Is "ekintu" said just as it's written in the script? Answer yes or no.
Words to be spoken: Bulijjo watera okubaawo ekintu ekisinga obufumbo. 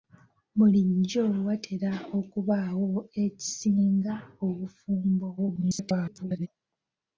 no